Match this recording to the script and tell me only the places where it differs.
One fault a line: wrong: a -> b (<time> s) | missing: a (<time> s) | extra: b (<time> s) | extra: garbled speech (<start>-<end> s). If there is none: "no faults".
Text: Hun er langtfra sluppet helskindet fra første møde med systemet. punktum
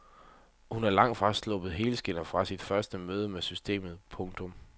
extra: sit (2.5 s)